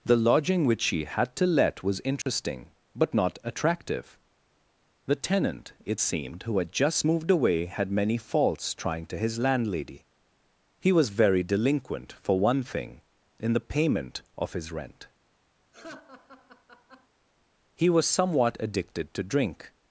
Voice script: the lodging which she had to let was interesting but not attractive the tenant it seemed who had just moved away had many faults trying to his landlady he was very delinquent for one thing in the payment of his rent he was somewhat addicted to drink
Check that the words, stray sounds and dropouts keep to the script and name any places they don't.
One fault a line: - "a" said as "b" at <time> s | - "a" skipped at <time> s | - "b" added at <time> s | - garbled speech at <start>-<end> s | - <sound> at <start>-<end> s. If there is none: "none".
- dropout at 2.2-2.3 s
- laugh at 15.7-17.1 s